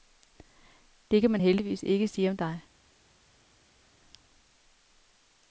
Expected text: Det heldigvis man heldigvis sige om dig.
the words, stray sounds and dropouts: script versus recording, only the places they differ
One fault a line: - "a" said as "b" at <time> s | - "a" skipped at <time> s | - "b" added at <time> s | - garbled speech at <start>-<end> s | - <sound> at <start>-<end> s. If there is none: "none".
- "heldigvis" said as "kan" at 1.2 s
- "ikke" added at 1.8 s